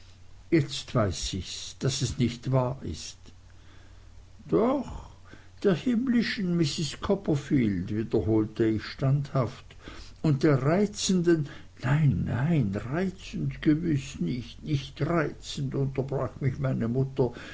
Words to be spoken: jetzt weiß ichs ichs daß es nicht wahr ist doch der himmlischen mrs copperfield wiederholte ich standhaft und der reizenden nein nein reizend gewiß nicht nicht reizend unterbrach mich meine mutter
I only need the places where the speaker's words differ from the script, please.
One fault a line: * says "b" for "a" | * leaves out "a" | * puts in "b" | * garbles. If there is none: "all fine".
* leaves out "ichs"